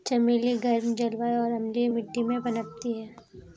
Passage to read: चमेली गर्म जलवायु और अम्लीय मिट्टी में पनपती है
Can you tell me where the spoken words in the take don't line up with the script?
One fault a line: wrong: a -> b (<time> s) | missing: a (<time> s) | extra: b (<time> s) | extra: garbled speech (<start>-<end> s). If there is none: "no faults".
no faults